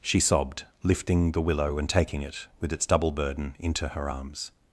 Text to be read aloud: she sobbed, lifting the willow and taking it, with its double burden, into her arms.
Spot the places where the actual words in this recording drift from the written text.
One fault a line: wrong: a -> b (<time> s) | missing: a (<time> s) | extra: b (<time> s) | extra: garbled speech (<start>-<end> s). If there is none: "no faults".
no faults